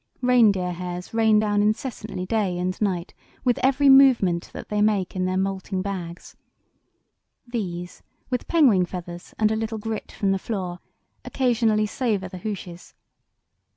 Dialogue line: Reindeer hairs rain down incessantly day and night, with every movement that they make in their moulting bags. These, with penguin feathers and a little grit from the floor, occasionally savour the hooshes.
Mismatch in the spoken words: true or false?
false